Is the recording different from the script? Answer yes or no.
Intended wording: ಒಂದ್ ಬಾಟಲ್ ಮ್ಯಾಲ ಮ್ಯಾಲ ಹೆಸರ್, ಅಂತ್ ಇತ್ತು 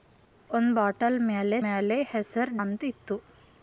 no